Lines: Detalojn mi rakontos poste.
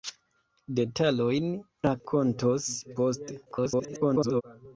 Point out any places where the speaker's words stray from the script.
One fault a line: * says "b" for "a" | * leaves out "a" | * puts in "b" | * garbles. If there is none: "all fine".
* leaves out "mi"
* garbles